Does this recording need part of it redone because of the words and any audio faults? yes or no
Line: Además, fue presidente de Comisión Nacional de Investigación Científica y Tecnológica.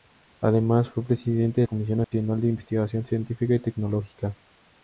yes